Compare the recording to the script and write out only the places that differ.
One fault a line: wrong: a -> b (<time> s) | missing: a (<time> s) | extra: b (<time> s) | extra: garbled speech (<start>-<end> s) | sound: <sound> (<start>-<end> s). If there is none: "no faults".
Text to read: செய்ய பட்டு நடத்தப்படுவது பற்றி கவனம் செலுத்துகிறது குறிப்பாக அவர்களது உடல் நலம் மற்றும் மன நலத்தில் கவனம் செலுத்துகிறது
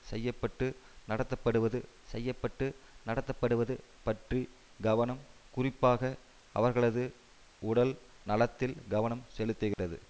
extra: செய்ய பட்டு நடத்தப்படுவது (2.0 s)
missing: செலுத்துகிறது (5.2 s)
missing: நலம் மற்றும் மன (7.9 s)
sound: dropout (9.7-9.8 s)